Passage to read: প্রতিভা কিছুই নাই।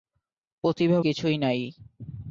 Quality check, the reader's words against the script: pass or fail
pass